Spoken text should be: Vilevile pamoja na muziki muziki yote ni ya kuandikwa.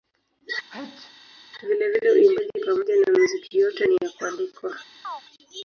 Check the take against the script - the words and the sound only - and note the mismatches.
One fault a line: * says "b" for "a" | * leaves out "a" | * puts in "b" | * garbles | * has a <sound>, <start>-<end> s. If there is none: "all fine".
* has a sneeze, 0.7-1.2 s
* puts in "uimbaji"
* leaves out "muziki"
* has a chirp, 5.0-5.2 s